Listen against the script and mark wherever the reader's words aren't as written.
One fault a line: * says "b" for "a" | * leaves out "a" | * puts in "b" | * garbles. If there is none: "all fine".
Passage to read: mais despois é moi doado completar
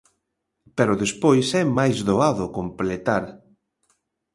* says "pero" for "mais"
* says "máis" for "moi"